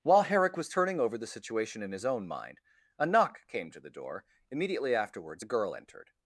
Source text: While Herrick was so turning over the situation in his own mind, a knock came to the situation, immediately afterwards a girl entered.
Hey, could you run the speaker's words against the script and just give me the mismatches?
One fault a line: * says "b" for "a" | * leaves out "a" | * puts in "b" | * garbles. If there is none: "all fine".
* leaves out "so"
* says "door" for "situation"